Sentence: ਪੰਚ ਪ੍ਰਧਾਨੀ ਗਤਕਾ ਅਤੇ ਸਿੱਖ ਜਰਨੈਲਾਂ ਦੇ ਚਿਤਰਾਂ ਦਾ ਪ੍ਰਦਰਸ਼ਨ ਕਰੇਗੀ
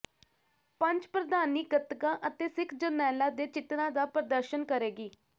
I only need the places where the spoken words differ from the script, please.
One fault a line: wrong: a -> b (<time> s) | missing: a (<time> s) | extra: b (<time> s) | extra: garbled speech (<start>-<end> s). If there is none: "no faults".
no faults